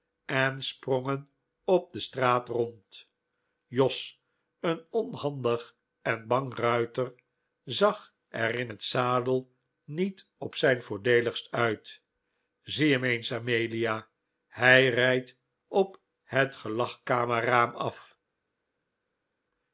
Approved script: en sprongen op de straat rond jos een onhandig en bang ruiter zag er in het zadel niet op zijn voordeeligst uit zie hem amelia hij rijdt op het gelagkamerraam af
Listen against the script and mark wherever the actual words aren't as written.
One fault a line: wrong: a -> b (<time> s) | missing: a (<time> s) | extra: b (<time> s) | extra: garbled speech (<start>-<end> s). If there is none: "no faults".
extra: eens (13.0 s)